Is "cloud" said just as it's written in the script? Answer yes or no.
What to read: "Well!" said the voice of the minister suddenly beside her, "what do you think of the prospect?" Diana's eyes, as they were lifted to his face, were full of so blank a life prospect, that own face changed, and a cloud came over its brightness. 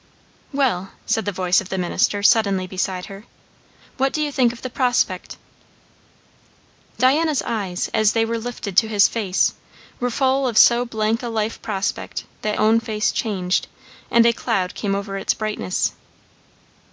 yes